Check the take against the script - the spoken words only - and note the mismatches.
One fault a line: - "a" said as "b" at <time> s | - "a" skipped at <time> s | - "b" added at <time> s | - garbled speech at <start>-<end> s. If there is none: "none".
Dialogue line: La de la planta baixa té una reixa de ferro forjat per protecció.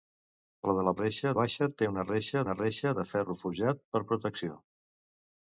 - "planta" said as "reixa" at 1.0 s
- "una reixa" added at 2.4 s